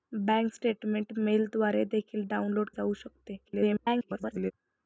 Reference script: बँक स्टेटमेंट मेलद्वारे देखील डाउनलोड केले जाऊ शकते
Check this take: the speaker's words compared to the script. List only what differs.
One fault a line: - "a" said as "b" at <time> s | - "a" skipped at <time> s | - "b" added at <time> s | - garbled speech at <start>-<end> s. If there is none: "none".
- "केले" skipped at 2.7 s
- garbled speech at 3.4-4.5 s